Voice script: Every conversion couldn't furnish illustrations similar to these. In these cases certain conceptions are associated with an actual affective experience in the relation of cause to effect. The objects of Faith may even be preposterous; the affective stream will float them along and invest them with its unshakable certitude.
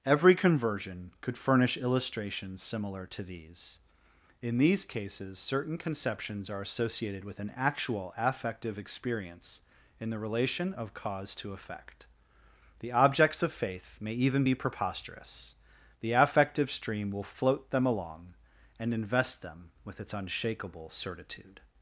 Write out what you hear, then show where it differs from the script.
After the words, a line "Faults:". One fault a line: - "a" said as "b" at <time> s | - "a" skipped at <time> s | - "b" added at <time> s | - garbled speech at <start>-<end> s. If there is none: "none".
Every conversion could furnish illustrations similar to these. In these cases certain conceptions are associated with an actual affective experience in the relation of cause to effect. The objects of Faith may even be preposterous; the affective stream will float them along and invest them with its unshakable certitude.
Faults:
- "couldn't" said as "could" at 1.2 s